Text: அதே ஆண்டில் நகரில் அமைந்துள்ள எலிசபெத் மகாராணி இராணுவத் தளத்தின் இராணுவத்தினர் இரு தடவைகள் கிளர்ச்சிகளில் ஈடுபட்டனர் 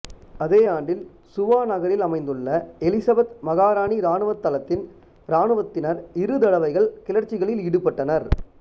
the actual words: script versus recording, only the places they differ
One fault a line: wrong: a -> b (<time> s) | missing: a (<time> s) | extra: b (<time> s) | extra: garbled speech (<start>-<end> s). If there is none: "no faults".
extra: சுவா (1.3 s)